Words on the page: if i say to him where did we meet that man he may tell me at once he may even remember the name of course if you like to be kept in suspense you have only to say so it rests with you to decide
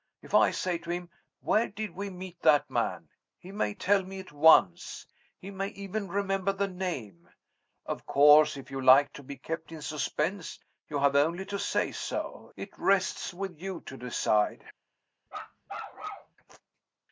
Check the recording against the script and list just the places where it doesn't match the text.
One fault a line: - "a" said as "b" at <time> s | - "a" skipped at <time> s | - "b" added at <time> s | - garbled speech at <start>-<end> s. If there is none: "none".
none